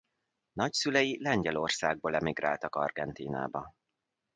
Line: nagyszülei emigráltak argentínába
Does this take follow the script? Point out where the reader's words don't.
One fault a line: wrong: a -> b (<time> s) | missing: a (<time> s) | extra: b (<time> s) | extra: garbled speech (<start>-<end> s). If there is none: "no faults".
extra: lengyelországból (1.2 s)